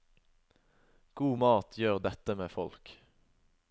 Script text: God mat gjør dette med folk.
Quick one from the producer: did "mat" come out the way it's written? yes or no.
yes